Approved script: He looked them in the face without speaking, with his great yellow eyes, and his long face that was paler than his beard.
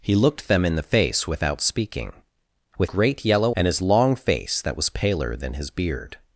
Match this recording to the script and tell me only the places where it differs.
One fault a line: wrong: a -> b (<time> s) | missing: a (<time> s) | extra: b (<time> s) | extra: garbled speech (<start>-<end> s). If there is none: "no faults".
missing: his (2.9 s)
missing: eyes (3.6 s)